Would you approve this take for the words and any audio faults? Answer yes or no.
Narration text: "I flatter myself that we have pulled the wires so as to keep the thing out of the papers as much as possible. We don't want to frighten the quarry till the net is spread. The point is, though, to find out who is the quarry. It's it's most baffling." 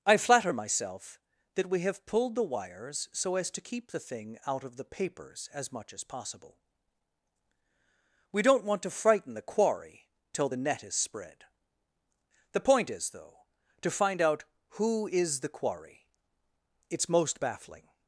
no